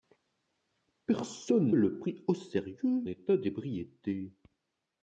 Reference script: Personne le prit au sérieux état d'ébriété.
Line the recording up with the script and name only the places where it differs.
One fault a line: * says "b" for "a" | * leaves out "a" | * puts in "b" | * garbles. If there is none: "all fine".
all fine